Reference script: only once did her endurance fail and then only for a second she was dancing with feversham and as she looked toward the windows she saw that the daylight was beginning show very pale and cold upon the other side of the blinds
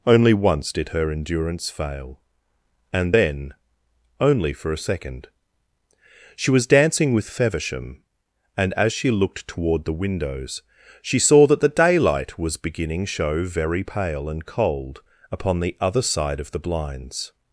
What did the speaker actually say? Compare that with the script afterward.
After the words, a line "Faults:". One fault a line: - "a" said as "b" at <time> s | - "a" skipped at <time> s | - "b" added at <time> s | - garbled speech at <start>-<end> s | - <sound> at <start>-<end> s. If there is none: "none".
only once did her endurance fail and then only for a second she was dancing with feversham and as she looked toward the windows she saw that the daylight was beginning show very pale and cold upon the other side of the blinds
Faults:
none